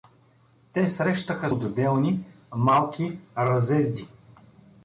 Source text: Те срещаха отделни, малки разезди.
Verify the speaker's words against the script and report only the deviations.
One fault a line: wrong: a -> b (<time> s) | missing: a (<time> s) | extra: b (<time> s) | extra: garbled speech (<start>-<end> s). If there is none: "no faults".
no faults